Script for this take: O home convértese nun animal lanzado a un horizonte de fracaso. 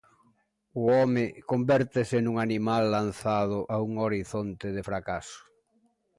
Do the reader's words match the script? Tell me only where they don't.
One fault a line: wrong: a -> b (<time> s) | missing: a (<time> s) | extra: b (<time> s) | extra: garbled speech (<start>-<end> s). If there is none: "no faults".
no faults